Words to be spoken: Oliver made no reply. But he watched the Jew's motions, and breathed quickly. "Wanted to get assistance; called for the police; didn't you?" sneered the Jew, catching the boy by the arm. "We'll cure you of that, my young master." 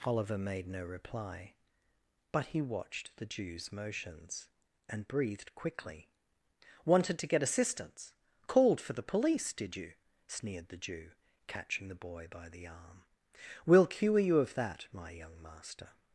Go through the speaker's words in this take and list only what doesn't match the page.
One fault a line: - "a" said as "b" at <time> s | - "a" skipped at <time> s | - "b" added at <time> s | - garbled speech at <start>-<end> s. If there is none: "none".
- "didn't" said as "did" at 9.5 s